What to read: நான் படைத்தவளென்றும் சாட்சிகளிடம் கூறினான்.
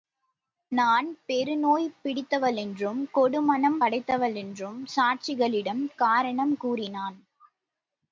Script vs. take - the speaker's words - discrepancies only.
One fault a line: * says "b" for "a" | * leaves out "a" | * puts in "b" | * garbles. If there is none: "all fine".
* puts in "பெருநோய் பிடித்தவளென்றும் கொடுமனம்"
* puts in "காரணம்"